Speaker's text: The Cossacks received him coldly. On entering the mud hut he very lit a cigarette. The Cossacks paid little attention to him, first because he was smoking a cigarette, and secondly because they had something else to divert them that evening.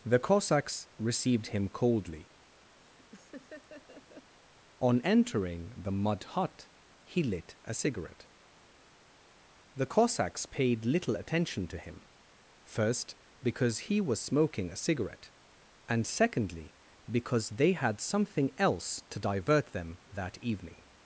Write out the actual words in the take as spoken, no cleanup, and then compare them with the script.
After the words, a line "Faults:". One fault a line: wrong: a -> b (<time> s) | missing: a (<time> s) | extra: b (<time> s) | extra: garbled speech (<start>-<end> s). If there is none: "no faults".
The Cossacks received him coldly. On entering the mud hut he lit a cigarette. The Cossacks paid little attention to him, first because he was smoking a cigarette, and secondly because they had something else to divert them that evening.
Faults:
missing: very (7.2 s)